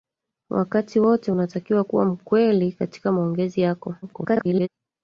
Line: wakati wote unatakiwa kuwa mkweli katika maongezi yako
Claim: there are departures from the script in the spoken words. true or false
true